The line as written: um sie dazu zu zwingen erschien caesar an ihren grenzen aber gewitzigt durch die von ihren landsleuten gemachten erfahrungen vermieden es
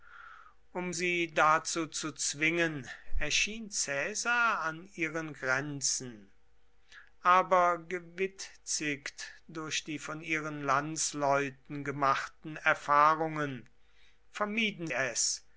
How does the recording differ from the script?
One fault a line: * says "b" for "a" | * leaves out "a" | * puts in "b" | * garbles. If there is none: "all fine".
all fine